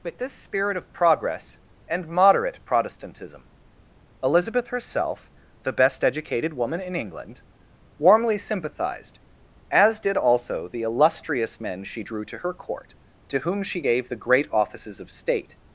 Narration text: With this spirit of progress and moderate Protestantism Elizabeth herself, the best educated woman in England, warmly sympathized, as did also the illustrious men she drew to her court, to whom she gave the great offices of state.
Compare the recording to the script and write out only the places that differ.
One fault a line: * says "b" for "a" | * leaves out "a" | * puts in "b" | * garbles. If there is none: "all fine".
all fine